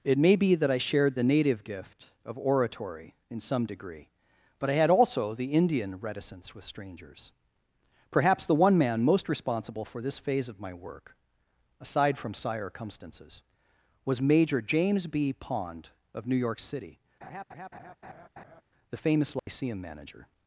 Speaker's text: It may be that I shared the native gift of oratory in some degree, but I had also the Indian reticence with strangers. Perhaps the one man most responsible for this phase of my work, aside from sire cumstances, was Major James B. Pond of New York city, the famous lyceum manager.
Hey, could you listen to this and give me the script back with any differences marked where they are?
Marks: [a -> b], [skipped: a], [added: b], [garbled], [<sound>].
It may be that I shared the native gift of oratory in some degree, but I had also the Indian reticence with strangers. Perhaps the one man most responsible for this phase of my work, aside from sire cumstances, was Major James B. Pond of New York city, [laugh] the famous lyceum [dropout] manager.